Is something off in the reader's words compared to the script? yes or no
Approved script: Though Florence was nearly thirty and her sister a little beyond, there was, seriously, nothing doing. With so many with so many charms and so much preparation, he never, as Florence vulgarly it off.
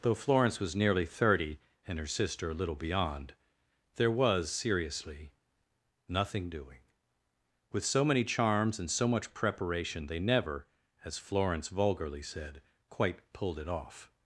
yes